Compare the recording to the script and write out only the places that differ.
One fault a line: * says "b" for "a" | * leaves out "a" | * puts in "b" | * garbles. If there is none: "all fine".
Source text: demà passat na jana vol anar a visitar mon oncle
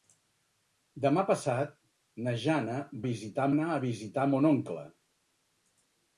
* says "visitar" for "vol"